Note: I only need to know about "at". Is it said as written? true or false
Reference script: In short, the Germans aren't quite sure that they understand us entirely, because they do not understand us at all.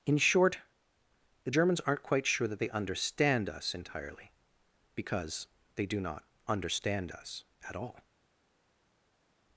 true